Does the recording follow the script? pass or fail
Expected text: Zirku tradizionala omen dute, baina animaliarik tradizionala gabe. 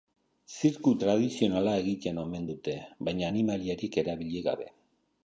fail